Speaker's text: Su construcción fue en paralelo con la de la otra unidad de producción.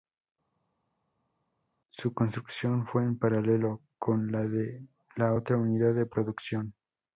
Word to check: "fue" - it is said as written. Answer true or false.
true